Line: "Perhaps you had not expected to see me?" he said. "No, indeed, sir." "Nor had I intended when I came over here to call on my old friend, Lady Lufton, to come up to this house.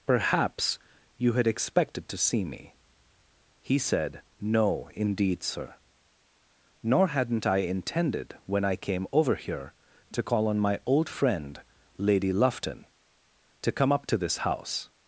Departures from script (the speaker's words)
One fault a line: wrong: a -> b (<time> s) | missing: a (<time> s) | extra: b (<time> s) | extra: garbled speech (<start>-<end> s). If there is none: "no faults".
missing: not (1.5 s)
wrong: had -> hadn't (7.1 s)